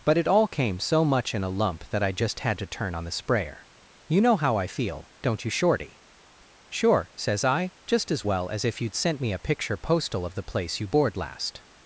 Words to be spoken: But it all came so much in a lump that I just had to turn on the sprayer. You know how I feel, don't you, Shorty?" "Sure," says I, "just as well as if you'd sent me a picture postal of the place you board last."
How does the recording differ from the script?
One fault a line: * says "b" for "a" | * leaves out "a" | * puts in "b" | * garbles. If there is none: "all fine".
all fine